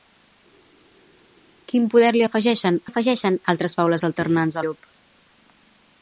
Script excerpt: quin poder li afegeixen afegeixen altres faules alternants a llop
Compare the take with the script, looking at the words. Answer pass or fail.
pass